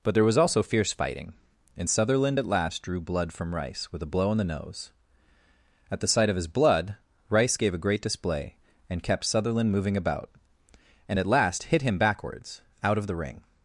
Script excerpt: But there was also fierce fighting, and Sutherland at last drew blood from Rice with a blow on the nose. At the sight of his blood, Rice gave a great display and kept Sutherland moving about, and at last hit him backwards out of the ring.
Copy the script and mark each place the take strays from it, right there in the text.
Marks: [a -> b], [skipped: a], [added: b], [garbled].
But there was also fierce fighting, and Sutherland at last drew blood from Rice with a blow on the nose. At the sight of his blood, Rice gave a great display and kept Sutherland moving about, and at last hit him backwards out of the ring.